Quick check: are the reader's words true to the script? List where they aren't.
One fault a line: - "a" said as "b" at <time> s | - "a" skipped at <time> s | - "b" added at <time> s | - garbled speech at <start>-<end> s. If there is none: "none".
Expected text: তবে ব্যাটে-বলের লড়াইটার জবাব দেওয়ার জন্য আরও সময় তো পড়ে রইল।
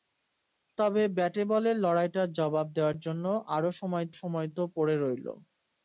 - "সময়" added at 4.2 s